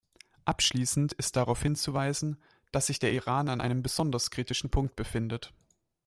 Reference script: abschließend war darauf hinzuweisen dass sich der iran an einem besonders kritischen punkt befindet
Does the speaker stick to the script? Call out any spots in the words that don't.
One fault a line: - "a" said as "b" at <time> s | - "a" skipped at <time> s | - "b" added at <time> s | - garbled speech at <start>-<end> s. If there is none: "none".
- "war" said as "ist" at 1.1 s